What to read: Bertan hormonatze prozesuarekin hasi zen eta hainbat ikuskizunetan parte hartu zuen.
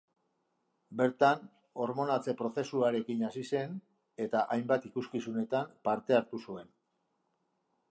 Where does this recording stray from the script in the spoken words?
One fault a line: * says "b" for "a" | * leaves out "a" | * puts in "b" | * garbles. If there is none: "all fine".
all fine